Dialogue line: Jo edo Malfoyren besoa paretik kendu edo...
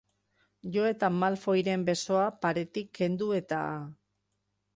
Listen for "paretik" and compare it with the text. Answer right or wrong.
right